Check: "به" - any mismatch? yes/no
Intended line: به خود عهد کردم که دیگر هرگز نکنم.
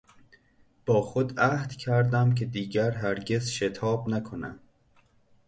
yes